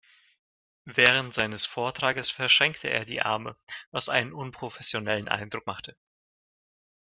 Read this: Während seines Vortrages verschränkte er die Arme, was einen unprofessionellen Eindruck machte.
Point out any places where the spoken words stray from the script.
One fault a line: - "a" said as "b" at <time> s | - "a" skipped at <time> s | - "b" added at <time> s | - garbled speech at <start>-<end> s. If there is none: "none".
none